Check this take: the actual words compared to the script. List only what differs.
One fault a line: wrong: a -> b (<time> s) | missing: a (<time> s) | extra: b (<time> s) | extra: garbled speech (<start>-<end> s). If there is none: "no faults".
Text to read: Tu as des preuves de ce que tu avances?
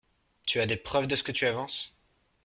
no faults